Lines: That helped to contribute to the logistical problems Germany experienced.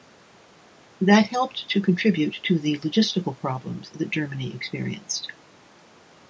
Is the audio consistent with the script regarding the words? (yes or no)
no